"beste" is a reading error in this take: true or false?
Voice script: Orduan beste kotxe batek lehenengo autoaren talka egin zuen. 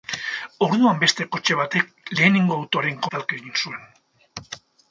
false